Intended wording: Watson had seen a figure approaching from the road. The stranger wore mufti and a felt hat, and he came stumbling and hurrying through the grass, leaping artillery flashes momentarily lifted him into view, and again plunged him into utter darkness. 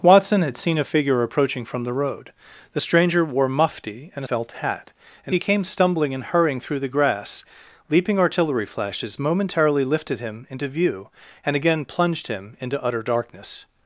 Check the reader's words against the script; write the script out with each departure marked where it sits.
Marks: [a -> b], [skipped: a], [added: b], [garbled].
Watson had seen a figure approaching from the road. The stranger wore mufti and a felt hat, and he came stumbling and hurrying through the grass, leaping artillery flashes momentarily lifted him into view, and again plunged him into utter darkness.